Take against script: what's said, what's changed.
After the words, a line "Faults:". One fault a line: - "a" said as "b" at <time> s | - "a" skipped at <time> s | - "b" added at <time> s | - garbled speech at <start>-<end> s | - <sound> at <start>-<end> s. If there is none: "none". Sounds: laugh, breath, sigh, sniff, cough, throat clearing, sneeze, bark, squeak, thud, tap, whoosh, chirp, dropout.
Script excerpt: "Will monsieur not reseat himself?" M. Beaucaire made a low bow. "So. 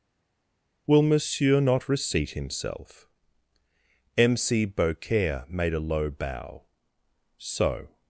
"Will monsieur not reseat himself?" M. c Beaucaire made a low bow. "So.
Faults:
- "c" added at 4.4 s